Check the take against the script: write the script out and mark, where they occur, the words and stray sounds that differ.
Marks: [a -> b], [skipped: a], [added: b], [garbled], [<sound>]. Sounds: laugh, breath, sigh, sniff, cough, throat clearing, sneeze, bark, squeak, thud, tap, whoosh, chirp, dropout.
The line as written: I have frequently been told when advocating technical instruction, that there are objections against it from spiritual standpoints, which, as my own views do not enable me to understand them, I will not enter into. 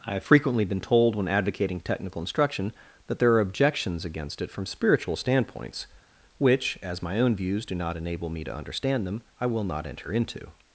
I have frequently been told when advocating technical instruction, that there are objections against it from spiritual standpoints, which, as my own views do not enable me to understand them, I will not enter into.